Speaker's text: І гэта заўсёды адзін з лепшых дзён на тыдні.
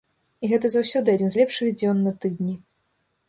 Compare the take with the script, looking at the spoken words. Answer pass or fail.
pass